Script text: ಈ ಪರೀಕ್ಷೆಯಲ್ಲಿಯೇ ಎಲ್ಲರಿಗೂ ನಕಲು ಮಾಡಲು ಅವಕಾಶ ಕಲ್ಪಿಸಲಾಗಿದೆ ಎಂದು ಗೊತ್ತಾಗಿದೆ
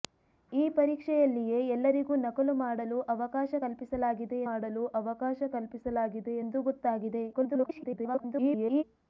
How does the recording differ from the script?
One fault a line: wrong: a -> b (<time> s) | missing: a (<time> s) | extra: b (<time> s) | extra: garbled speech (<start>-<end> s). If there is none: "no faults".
extra: ಮಾಡಲು ಅವಕಾಶ ಕಲ್ಪಿಸಲಾಗಿದೆ (4.5 s)
extra: garbled speech (7.3-8.8 s)